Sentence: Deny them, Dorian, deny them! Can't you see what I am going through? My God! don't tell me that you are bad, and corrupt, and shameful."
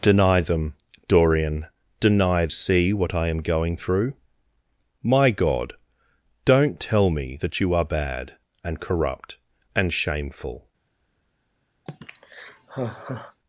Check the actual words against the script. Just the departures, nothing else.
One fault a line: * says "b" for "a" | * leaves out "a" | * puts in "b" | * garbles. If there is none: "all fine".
* leaves out "them Can't you"